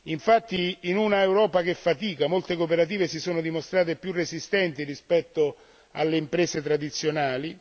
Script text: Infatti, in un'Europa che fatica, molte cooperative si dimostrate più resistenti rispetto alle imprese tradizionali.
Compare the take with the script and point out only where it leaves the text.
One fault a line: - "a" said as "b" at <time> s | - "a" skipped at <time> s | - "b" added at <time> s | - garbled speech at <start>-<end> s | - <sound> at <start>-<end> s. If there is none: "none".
- "sono" added at 3.2 s